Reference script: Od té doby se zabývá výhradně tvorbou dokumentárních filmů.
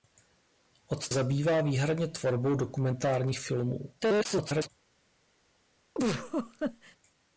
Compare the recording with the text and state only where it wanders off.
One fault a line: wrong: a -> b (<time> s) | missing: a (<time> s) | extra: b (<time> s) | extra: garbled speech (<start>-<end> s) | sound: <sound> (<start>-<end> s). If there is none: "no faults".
missing: té doby se (1.1 s)
extra: garbled speech (4.0-4.7 s)
sound: laugh (5.9-7.0 s)